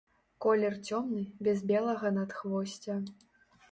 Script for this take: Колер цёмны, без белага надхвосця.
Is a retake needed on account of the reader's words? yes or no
no